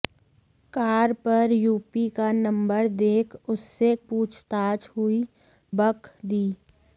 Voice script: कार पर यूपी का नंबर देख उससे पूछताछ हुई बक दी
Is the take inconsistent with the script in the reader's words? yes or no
no